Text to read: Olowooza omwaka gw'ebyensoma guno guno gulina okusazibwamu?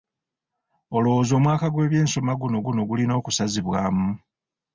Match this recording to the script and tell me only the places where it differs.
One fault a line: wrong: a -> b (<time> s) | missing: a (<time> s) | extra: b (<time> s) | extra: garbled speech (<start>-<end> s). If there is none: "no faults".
no faults